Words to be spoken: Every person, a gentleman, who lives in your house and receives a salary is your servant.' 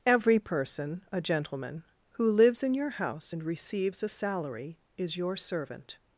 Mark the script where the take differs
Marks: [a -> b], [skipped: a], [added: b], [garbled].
Every person, a gentleman, who lives in your house and receives a salary is your servant.'